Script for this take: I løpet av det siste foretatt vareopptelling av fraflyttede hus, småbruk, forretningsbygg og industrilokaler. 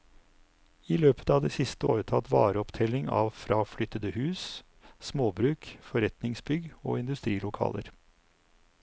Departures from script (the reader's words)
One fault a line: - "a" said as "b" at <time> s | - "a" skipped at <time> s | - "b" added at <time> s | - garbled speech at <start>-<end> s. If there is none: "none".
none